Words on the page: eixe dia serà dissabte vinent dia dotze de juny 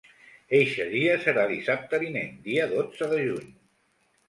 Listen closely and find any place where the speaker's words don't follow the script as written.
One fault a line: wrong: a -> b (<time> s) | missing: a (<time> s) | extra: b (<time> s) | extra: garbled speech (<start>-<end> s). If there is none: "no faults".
no faults